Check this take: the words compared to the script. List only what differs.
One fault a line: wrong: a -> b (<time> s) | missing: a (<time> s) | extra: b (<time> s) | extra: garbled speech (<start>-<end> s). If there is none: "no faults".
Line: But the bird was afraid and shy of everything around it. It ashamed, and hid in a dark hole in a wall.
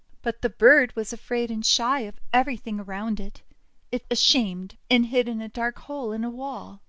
no faults